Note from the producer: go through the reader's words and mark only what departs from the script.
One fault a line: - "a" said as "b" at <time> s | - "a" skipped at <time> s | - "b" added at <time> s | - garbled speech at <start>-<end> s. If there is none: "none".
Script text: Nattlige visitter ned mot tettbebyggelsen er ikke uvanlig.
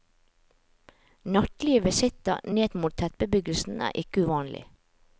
none